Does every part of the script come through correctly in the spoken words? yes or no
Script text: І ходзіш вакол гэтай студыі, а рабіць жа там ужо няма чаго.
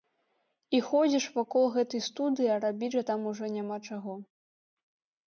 yes